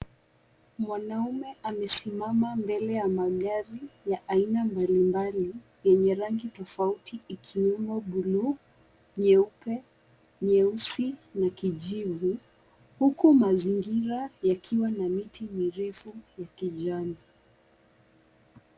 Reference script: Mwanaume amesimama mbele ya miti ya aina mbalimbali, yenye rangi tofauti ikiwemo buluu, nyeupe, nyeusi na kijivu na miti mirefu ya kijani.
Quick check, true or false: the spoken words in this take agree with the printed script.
false